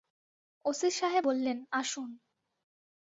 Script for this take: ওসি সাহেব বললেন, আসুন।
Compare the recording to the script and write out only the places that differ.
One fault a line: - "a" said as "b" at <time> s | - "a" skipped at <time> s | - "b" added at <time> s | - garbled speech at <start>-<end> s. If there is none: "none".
none